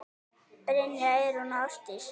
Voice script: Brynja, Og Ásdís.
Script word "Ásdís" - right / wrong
right